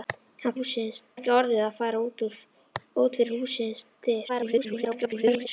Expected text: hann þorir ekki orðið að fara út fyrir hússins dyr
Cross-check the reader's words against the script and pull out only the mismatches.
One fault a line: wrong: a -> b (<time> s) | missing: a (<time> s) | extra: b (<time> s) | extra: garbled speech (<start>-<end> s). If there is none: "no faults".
wrong: þorir -> hússins (0.5 s)
extra: garbled speech (4.3-5.5 s)